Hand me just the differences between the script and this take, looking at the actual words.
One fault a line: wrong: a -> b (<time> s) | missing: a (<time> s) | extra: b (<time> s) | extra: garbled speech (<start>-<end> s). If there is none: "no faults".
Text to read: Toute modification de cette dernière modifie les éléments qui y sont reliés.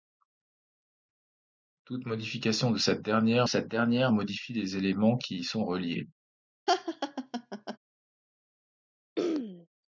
extra: cette dernière (3.5 s)